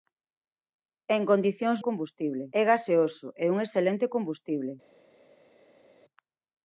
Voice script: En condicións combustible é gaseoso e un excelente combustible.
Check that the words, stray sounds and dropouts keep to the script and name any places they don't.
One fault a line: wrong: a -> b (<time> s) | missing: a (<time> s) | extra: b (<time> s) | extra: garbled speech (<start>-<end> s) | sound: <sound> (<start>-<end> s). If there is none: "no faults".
no faults